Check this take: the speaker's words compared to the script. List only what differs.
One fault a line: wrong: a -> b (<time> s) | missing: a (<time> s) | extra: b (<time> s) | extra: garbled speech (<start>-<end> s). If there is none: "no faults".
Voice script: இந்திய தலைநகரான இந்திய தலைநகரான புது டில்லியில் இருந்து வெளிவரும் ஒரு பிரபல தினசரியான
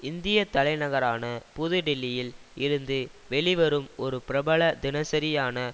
missing: இந்திய தலைநகரான (1.2 s)